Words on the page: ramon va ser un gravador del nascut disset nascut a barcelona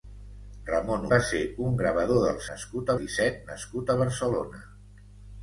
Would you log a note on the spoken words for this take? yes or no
no